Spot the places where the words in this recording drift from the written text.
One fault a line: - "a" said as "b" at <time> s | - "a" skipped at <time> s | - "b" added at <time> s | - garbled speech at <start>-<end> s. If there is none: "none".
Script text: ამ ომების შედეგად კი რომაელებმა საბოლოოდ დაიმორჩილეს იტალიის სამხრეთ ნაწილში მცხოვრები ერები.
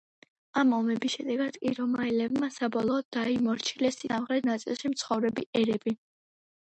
- "იტალიის" skipped at 4.0 s